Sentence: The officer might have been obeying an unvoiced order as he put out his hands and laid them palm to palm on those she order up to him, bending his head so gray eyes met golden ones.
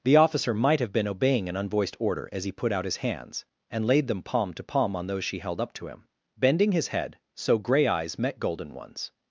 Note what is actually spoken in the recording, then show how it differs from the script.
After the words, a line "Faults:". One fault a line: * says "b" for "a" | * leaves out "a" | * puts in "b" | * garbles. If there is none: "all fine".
The officer might have been obeying an unvoiced order as he put out his hands and laid them palm to palm on those she held up to him, bending his head so gray eyes met golden ones.
Faults:
* says "held" for "order"